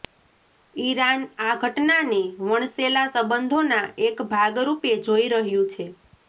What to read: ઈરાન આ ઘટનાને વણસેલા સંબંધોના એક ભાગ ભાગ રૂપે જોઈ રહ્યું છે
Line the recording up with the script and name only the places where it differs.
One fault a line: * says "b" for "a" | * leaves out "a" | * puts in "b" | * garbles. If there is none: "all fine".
* leaves out "ભાગ"